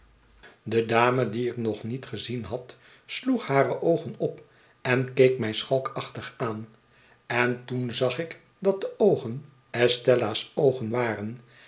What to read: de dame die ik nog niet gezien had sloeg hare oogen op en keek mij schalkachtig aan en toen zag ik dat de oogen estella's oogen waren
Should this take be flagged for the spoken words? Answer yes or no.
no